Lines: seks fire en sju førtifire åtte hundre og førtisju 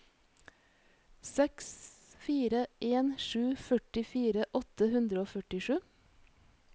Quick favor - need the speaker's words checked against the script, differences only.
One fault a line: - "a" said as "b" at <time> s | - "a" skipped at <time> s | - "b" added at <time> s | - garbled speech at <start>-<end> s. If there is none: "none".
none